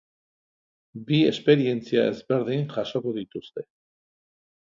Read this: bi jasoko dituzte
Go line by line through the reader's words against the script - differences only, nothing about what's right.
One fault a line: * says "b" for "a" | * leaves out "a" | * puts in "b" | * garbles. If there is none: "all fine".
* puts in "esperientzia ezberdin"